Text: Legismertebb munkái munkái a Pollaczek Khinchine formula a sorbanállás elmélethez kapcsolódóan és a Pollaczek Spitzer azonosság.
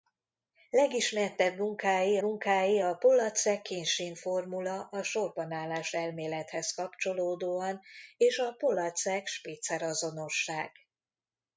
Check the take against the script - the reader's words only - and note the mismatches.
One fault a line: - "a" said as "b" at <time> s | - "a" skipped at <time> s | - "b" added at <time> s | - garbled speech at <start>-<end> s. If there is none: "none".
none